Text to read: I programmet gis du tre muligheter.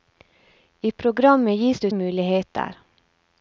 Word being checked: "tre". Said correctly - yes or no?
no